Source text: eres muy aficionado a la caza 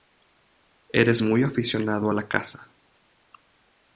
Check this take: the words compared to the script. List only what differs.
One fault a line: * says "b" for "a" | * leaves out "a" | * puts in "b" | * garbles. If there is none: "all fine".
all fine